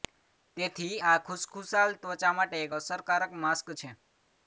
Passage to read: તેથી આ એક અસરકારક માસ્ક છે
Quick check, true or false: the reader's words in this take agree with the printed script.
false